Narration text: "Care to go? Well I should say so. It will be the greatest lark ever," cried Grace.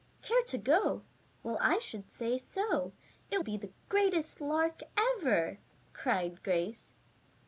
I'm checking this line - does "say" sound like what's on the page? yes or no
yes